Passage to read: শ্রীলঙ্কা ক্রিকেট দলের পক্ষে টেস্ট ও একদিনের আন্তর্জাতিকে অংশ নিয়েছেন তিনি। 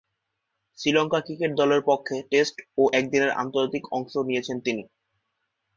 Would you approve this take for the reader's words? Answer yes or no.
yes